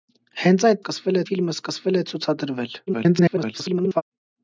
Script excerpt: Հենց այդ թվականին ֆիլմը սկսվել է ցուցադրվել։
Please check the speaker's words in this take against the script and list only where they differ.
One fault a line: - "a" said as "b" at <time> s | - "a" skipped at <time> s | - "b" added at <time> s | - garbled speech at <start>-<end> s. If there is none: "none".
- "թվականին" said as "սկսվել" at 0.8 s
- garbled speech at 2.9-4.0 s